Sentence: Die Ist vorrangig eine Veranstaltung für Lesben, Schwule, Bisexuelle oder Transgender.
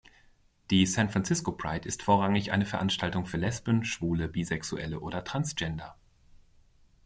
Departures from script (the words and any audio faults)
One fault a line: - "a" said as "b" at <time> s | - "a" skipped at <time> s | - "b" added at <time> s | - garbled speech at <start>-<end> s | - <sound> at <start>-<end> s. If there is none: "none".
- "San Francisco Pride" added at 0.9 s